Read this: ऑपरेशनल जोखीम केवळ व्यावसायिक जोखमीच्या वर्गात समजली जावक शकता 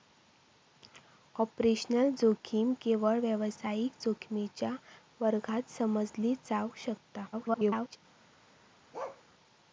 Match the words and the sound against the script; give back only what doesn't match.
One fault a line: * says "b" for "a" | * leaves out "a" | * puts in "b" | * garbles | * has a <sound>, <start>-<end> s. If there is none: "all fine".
* garbles
* has a bark, 8.9-9.2 s